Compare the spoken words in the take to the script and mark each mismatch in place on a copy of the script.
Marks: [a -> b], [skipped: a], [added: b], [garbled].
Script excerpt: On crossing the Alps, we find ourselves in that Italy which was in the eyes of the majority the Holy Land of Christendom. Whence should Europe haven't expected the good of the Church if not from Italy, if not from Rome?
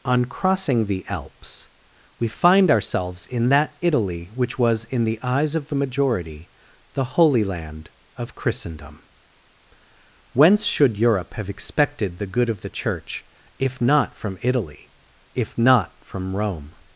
On crossing the Alps, we find ourselves in that Italy which was in the eyes of the majority the Holy Land of Christendom. Whence should Europe [haven't -> have] expected the good of the Church if not from Italy, if not from Rome?